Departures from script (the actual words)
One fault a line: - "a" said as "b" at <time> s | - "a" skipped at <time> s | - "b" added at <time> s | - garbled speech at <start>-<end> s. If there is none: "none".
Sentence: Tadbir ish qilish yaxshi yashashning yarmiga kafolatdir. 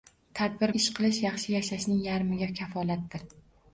none